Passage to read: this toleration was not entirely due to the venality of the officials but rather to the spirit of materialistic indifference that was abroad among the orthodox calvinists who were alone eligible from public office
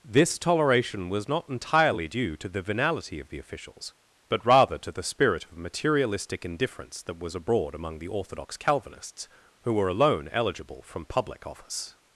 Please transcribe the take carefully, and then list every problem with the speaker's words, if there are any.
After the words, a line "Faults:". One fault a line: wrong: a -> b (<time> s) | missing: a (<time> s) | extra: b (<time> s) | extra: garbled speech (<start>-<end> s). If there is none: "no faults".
this toleration was not entirely due to the venality of the officials but rather to the spirit of materialistic indifference that was abroad among the orthodox calvinists who were alone eligible from public office
Faults:
no faults